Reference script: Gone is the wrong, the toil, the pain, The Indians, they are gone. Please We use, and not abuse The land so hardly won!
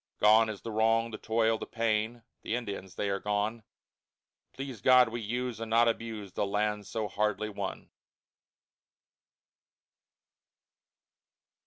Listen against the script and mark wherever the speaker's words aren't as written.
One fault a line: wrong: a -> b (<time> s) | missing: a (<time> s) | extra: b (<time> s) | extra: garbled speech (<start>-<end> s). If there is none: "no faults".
extra: God (4.8 s)